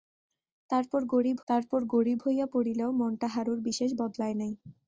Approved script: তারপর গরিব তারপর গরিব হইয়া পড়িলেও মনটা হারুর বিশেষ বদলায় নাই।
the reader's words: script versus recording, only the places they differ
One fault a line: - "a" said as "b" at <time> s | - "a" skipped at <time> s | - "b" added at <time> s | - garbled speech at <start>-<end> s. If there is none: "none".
none